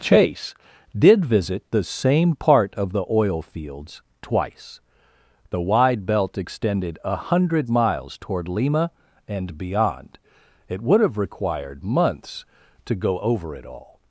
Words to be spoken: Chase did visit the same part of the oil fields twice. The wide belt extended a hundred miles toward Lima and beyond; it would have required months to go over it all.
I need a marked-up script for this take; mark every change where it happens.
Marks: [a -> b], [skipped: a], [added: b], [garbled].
Chase did visit the same part of the oil fields twice. The wide belt extended a hundred miles toward Lima and beyond; it would have required months to go over it all.